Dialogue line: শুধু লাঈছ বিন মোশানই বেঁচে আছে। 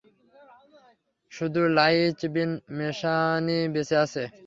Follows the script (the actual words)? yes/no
yes